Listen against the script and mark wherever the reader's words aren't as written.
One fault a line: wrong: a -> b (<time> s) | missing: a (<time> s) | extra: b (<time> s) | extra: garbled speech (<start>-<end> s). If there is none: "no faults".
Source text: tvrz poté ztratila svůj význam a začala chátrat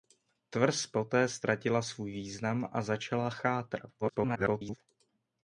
extra: garbled speech (4.0-4.8 s)